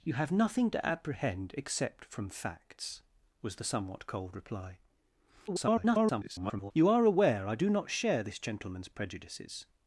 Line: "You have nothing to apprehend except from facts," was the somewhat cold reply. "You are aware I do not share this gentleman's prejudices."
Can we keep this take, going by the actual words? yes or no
no